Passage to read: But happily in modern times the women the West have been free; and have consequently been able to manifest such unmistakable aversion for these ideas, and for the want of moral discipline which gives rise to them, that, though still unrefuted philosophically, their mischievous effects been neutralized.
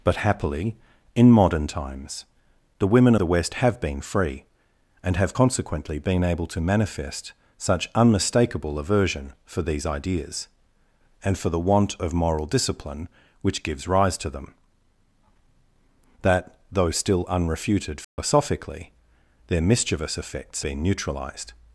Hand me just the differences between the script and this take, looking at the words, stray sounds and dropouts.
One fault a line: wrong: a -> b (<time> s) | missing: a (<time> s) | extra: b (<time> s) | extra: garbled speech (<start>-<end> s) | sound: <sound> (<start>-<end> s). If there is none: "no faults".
sound: dropout (18.0-18.2 s)